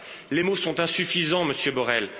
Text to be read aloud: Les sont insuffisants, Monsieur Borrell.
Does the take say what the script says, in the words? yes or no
no